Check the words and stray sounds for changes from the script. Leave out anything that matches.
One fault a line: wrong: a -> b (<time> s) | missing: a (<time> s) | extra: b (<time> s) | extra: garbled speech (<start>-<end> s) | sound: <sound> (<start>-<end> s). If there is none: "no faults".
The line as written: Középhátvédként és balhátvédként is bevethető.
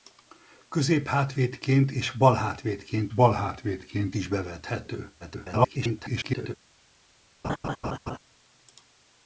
extra: balhátvédként (3.1 s)
extra: garbled speech (5.2-6.6 s)
sound: laugh (7.4-8.2 s)